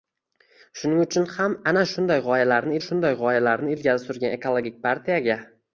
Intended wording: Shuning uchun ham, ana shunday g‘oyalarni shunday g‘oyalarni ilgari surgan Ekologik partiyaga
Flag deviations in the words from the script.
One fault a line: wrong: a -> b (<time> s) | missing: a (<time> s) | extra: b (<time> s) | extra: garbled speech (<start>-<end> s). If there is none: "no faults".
no faults